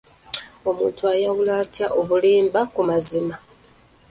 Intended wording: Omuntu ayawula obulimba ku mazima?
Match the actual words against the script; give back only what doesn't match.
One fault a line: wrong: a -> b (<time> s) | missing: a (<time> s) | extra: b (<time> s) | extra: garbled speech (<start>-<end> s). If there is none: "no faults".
extra: atya (1.6 s)